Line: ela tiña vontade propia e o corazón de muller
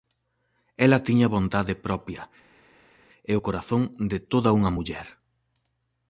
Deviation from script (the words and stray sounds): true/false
true